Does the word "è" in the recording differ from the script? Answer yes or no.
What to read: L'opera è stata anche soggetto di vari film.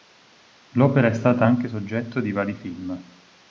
no